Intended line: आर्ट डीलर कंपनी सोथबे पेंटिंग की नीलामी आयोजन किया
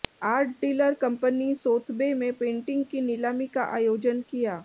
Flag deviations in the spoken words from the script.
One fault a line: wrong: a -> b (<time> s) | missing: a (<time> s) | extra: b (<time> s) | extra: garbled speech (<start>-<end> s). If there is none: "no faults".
extra: में (2.1 s)
extra: का (3.5 s)